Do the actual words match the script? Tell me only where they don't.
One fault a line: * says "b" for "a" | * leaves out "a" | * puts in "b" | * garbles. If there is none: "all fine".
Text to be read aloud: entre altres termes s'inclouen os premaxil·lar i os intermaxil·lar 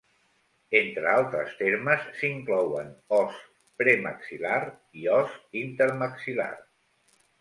all fine